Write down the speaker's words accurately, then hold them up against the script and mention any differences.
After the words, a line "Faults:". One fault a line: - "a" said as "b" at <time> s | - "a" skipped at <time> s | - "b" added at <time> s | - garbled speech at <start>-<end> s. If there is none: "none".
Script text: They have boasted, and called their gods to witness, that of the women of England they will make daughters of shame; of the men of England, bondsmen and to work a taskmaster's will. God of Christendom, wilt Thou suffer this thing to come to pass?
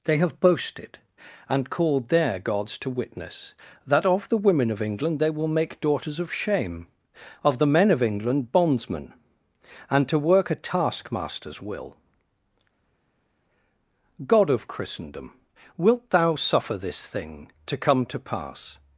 They have boasted, and called their gods to witness, that of the women of England they will make daughters of shame; of the men of England, bondsmen and to work a taskmaster's will. God of Christendom, wilt Thou suffer this thing to come to pass?
Faults:
none